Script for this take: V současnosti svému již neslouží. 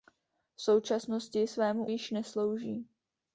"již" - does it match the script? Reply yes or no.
yes